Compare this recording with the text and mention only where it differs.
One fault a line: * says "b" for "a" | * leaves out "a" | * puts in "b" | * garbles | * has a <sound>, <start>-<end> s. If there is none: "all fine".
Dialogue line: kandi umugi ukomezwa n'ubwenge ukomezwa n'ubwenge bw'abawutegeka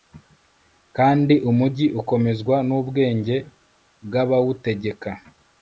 * leaves out "ukomezwa n'ubwenge"